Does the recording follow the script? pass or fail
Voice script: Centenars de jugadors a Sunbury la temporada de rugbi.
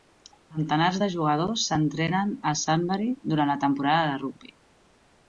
fail